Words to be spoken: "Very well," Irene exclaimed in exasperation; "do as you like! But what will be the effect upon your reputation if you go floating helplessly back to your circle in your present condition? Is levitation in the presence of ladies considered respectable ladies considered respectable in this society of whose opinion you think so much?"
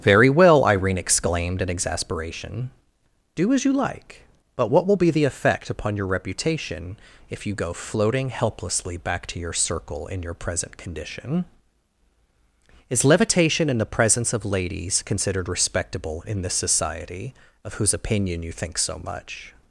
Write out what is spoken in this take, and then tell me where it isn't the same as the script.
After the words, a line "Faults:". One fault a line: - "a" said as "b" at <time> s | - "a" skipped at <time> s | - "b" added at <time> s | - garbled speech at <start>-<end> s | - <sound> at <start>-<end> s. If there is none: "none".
"Very well," Irene exclaimed in exasperation; "do as you like! But what will be the effect upon your reputation if you go floating helplessly back to your circle in your present condition? Is levitation in the presence of ladies considered respectable in this society of whose opinion you think so much?"
Faults:
- "ladies considered respectable" skipped at 16.2 s